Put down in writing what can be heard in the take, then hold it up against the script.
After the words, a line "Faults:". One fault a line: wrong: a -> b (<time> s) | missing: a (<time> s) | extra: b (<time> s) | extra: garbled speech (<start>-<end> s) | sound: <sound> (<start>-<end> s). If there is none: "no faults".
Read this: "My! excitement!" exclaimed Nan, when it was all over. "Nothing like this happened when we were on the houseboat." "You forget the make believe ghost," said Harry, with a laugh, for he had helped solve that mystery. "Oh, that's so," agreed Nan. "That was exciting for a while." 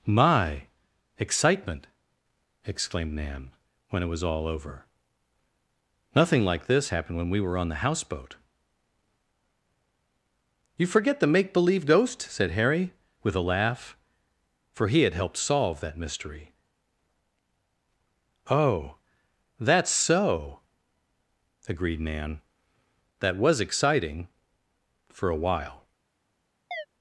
"My! excitement!" exclaimed Nan, when it was all over. "Nothing like this happened when we were on the houseboat." "You forget the make believe ghost," said Harry, with a laugh, for he had helped solve that mystery. "Oh, that's so," agreed Nan. "That was exciting for a while."
Faults:
sound: chirp (26.7-26.9 s)